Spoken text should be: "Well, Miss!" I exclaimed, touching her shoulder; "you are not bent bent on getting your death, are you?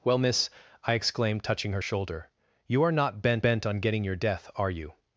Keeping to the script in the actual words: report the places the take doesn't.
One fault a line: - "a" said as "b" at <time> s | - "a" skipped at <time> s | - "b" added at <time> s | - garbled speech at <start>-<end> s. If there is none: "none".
none